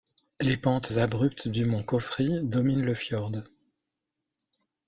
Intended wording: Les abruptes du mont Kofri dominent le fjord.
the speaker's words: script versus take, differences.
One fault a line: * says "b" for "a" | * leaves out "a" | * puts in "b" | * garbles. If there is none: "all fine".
* puts in "pentes"